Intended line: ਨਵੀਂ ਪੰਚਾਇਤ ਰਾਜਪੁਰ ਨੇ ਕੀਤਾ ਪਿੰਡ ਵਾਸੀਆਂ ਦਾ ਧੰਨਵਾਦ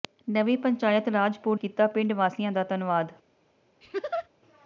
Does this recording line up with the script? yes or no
no